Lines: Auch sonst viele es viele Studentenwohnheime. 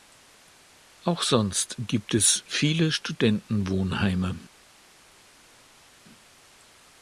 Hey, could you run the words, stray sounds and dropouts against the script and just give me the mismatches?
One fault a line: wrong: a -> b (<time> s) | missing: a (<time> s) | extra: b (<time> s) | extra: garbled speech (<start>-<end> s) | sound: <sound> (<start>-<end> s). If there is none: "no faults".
wrong: viele -> gibt (1.8 s)